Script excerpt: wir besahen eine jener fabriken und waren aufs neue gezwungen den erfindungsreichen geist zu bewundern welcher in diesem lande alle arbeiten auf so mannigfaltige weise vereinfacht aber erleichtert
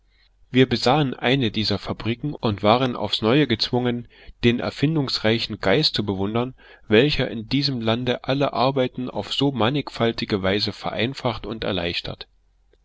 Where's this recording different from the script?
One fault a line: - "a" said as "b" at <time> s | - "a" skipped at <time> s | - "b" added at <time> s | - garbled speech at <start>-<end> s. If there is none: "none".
- "jener" said as "dieser" at 1.5 s
- "aber" said as "und" at 11.5 s